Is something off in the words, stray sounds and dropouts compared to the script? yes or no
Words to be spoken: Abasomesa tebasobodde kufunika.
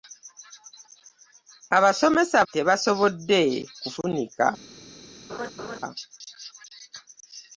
yes